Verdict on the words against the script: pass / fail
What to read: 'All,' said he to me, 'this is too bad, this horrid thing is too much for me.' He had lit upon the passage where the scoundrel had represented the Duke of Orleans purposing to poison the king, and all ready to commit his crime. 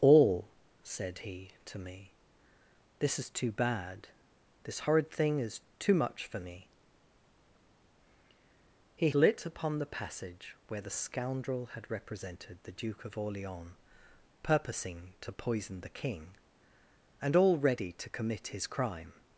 fail